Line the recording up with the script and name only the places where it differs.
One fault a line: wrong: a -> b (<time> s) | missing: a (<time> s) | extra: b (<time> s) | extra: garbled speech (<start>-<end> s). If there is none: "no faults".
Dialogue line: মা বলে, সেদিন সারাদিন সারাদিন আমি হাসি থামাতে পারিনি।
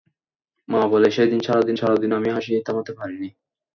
no faults